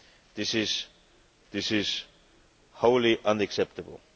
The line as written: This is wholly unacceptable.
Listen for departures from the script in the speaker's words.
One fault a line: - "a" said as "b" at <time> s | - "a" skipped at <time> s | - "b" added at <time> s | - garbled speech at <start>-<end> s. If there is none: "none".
- "this is" added at 1.5 s